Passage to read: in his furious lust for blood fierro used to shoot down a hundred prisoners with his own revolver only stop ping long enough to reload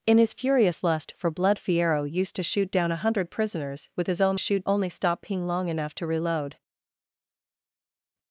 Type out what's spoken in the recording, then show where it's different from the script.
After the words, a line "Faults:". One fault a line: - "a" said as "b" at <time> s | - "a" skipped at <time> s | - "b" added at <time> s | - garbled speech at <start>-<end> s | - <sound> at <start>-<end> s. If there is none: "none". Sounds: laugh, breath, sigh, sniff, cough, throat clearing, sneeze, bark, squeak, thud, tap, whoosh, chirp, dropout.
in his furious lust for blood fierro used to shoot down a hundred prisoners with his own shoot only stop ping long enough to reload
Faults:
- "revolver" said as "shoot" at 4.4 s